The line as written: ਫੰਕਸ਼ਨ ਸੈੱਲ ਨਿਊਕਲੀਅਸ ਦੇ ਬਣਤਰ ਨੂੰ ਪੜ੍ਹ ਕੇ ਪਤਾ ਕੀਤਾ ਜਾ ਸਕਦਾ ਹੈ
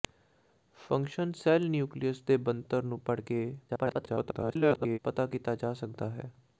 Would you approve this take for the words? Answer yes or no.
no